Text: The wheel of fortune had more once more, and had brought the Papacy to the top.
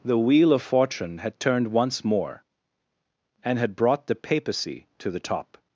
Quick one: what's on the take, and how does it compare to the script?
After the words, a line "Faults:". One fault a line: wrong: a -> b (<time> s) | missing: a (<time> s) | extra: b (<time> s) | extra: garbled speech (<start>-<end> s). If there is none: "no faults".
The wheel of fortune had turned once more, and had brought the Papacy to the top.
Faults:
wrong: more -> turned (1.4 s)